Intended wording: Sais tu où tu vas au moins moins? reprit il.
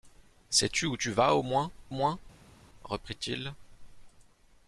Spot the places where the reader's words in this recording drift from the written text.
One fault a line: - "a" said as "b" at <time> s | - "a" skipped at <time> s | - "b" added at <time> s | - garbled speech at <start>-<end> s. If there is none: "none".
none